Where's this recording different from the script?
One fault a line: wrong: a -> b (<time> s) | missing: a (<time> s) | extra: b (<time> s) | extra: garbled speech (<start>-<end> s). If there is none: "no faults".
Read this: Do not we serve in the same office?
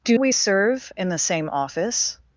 missing: not (0.2 s)